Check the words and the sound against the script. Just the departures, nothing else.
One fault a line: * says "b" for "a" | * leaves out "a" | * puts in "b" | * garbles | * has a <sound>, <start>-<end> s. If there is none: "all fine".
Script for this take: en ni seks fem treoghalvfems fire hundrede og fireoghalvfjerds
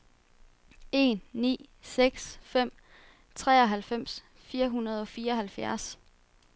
all fine